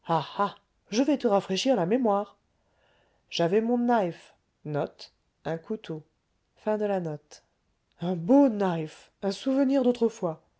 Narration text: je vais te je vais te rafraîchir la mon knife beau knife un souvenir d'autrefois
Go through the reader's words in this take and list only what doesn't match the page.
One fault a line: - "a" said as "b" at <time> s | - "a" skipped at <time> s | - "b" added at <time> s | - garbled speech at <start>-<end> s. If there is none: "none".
- "je vais te rafraîchir la" said as "rafraîchir la mémoire j'avais" at 1.3 s
- "un" added at 8.0 s